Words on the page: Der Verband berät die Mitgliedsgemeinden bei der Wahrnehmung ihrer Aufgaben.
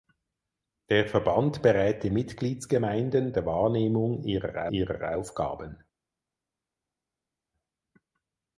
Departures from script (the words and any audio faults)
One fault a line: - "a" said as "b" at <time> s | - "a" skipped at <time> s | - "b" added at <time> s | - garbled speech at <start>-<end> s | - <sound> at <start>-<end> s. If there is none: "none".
- "bei" skipped at 3.4 s
- "ihrer" added at 4.7 s